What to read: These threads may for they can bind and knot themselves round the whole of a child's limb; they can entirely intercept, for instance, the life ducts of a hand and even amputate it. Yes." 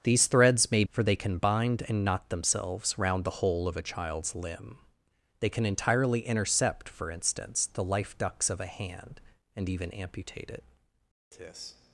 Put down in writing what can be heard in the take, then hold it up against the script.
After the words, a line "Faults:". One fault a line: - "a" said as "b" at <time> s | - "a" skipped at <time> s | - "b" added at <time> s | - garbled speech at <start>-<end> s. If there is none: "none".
These threads may for they can bind and knot themselves round the whole of a child's limb; they can entirely intercept, for instance, the life ducts of a hand and even amputate it. Yes."
Faults:
none